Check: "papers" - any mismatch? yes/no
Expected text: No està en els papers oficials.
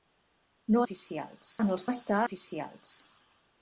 yes